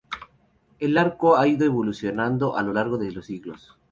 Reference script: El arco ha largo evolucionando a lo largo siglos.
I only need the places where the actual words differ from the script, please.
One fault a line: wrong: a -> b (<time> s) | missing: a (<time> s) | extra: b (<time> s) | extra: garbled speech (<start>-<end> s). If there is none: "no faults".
wrong: largo -> ido (1.5 s)
extra: de los (3.0 s)